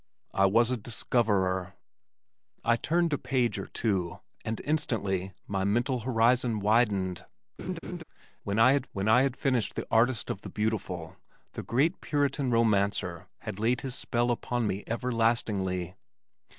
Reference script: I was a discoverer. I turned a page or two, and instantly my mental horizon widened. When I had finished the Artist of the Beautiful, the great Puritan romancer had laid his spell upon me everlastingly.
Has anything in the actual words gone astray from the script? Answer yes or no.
yes